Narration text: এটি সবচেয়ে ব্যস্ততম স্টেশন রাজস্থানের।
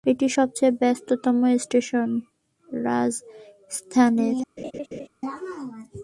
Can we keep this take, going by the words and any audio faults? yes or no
no